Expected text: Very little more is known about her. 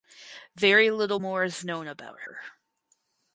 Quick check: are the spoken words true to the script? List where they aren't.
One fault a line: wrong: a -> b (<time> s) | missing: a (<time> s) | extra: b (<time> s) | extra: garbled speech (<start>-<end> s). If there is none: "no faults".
no faults